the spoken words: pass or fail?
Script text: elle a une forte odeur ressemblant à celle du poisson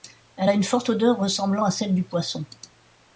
pass